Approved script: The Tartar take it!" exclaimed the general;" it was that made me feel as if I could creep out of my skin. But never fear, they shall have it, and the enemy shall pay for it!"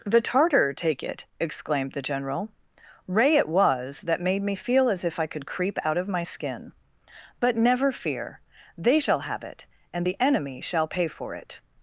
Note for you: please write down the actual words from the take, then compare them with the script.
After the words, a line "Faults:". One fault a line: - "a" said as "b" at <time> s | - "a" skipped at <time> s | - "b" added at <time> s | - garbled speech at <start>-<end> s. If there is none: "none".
The Tartar take it!" exclaimed the general;" ray it was that made me feel as if I could creep out of my skin. But never fear, they shall have it, and the enemy shall pay for it!"
Faults:
- "ray" added at 3.1 s